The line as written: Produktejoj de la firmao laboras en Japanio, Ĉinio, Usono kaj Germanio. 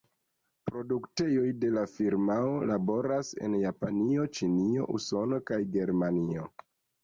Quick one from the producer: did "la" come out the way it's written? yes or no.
yes